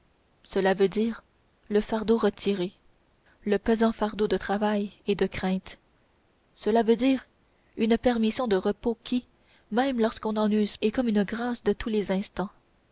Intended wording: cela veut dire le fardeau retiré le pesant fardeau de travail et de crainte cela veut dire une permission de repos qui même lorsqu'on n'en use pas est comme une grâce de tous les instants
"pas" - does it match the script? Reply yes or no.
no